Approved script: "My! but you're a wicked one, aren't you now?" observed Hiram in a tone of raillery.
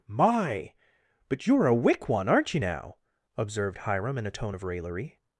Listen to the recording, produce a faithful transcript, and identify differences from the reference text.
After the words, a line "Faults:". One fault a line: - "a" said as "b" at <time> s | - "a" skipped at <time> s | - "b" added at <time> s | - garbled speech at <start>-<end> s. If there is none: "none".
"My! but you're a wick one, aren't you now?" observed Hiram in a tone of raillery.
Faults:
- "wicked" said as "wick" at 1.8 s